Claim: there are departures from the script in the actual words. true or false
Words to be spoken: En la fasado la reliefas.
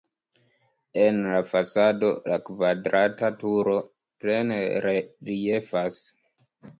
true